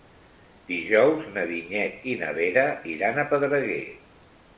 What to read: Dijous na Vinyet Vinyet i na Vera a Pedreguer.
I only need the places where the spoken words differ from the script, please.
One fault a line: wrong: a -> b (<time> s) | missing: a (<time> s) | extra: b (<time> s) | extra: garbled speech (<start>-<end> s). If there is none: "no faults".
missing: Vinyet (2.1 s)
extra: iran (3.0 s)